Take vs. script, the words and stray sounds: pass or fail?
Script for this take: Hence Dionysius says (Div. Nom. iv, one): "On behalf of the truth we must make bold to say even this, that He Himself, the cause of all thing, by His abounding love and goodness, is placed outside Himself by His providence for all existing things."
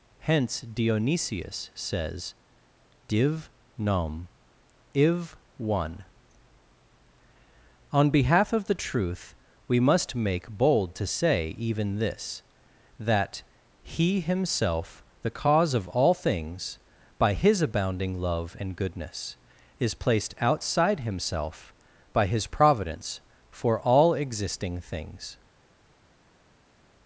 fail